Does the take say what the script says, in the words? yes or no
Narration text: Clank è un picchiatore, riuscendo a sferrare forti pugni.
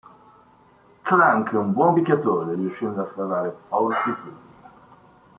no